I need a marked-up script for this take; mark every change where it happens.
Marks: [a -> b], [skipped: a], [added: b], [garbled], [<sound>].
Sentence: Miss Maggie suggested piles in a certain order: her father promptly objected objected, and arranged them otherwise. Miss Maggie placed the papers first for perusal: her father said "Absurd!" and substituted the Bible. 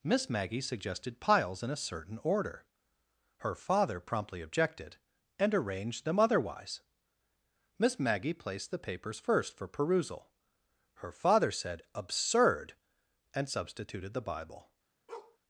Miss Maggie suggested piles in a certain order: her father promptly objected [skipped: objected,] and arranged them otherwise. Miss Maggie placed the papers first for perusal: her father said "Absurd!" and substituted the Bible. [bark]